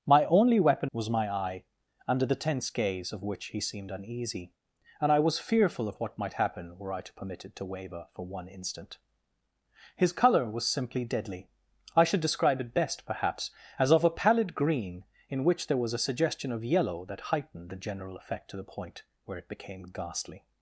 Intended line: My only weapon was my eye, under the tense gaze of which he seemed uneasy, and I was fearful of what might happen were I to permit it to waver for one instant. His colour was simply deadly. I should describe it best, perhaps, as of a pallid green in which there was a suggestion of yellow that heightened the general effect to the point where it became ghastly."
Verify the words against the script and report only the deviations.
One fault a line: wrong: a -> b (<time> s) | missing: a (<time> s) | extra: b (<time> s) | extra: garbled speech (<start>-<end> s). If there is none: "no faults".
no faults